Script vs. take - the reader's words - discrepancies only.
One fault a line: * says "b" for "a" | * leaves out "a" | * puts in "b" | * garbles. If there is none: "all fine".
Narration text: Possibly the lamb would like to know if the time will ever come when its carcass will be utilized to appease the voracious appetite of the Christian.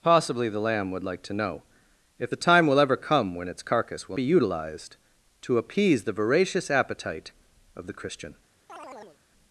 all fine